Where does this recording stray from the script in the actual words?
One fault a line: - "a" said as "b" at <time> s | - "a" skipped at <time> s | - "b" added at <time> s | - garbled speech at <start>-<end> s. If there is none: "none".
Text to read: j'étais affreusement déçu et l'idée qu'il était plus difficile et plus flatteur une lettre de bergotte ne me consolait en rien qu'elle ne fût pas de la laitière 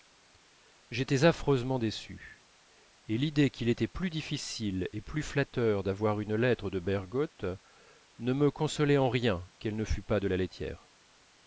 - "d'avoir" added at 5.8 s